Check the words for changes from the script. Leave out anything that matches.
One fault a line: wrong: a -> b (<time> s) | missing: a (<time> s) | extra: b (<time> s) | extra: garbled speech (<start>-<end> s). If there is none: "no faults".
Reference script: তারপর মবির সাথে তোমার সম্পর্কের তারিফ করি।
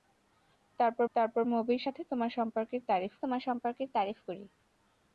extra: তারপর (1.2 s)
extra: তোমার সম্পর্কের তারিফ (3.2 s)